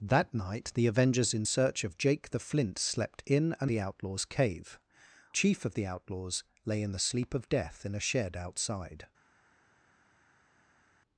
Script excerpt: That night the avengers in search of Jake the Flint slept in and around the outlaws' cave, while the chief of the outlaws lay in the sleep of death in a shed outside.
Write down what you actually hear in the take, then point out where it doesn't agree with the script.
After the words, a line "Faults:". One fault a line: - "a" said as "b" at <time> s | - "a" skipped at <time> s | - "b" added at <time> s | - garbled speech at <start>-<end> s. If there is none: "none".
That night the avengers in search of Jake the Flint slept in and the outlaws' cave, chief of the outlaws lay in the sleep of death in a shed outside.
Faults:
- "around" skipped at 3.7 s
- "while the" skipped at 4.8 s